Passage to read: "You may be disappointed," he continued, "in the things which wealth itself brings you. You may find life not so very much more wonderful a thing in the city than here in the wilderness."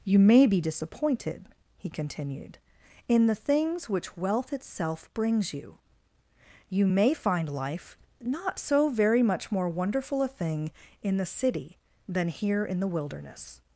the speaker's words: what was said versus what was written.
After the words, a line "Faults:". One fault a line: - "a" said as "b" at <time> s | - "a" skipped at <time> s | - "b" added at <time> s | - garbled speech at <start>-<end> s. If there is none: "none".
"You may be disappointed," he continued, "in the things which wealth itself brings you. You may find life not so very much more wonderful a thing in the city than here in the wilderness."
Faults:
none